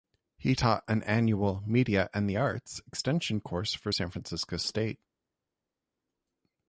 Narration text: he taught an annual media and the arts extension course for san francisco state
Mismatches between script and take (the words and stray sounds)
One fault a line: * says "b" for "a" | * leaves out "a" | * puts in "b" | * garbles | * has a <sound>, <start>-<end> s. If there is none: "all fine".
all fine